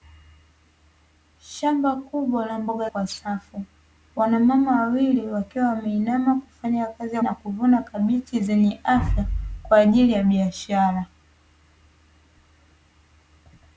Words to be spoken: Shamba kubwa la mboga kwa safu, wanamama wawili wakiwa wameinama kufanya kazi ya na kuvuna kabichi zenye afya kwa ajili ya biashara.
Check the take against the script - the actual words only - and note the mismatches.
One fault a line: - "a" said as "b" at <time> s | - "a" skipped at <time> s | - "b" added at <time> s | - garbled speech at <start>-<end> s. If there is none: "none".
none